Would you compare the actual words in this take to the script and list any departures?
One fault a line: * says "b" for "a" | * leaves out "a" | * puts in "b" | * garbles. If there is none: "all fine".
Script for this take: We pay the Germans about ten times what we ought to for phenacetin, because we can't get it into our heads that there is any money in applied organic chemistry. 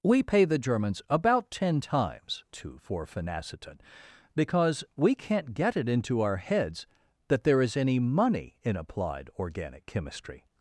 * leaves out "what we ought"